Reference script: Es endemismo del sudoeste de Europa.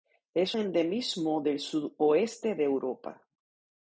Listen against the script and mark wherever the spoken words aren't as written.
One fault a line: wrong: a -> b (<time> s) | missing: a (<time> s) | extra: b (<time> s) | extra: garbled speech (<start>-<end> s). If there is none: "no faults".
no faults